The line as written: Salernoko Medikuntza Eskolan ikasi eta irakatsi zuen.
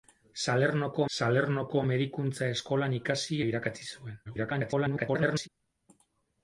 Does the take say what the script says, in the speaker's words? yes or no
no